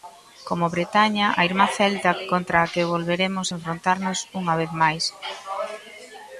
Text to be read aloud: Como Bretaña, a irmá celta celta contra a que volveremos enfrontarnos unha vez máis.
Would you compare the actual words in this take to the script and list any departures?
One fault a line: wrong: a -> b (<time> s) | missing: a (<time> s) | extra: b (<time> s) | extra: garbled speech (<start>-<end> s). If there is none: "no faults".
missing: celta (2.1 s)